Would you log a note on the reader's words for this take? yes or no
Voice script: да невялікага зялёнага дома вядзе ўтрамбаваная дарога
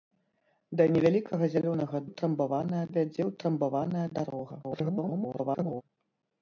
yes